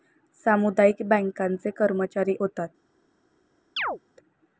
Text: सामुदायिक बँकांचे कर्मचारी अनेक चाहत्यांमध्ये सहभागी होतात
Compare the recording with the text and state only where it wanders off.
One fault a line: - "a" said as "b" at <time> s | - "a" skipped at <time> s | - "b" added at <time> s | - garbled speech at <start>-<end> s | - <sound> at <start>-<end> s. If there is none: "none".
- "अनेक चाहत्यांमध्ये सहभागी" skipped at 2.4 s
- chirp at 3.8-4.0 s